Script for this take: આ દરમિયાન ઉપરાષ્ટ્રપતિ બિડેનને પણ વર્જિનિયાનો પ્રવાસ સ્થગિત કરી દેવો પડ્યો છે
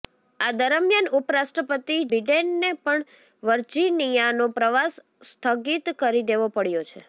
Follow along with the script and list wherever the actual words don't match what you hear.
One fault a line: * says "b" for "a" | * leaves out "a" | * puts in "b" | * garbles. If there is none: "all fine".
all fine